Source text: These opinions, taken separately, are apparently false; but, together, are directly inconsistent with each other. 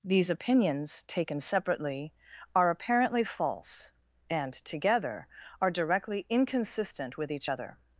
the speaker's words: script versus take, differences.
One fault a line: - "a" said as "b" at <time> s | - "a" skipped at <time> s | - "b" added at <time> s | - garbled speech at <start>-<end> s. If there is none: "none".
- "but" said as "and" at 4.3 s